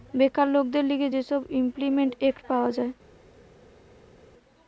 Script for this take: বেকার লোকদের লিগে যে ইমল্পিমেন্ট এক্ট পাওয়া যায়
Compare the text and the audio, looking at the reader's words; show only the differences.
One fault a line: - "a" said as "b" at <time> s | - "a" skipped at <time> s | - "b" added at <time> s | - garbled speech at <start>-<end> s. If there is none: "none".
- "সব" added at 1.2 s